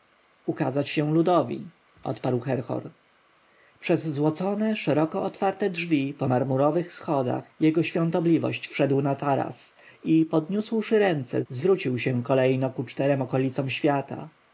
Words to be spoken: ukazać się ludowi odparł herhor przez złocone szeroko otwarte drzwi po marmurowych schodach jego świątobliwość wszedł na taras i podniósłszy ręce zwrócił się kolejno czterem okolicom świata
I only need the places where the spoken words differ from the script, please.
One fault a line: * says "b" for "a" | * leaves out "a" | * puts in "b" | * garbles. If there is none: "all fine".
* puts in "ku"